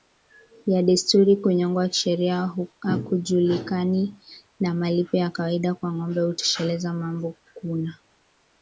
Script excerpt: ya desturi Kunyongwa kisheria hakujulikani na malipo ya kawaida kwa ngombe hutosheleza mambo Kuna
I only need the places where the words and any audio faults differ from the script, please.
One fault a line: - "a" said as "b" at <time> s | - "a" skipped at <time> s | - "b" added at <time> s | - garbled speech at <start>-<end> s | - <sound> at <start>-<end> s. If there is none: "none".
none